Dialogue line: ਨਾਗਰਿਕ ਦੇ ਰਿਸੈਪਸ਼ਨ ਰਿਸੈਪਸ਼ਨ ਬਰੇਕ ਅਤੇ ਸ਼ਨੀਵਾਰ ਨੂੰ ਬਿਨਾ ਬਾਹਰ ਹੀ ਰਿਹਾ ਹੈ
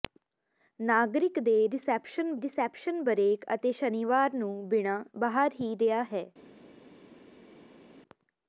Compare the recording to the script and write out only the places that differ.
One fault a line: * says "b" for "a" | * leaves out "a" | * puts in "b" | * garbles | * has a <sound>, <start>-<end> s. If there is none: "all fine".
all fine